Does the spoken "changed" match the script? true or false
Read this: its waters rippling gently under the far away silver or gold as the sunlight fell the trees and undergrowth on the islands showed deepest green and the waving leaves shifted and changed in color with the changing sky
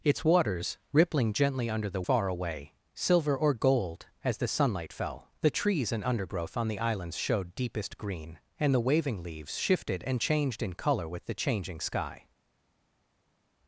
true